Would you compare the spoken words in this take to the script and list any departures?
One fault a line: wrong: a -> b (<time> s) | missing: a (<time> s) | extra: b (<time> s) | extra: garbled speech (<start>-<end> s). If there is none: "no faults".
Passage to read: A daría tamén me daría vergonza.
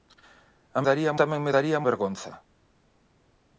no faults